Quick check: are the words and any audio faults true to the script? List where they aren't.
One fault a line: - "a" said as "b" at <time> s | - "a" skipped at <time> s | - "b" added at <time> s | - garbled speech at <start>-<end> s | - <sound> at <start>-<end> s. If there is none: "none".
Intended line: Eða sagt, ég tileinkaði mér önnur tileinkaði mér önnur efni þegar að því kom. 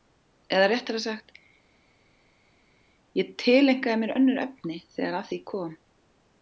- "réttara" added at 0.7 s
- "tileinkaði mér önnur" skipped at 4.4 s